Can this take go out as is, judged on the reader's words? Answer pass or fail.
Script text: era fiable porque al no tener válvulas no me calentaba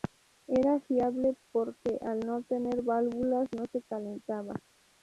fail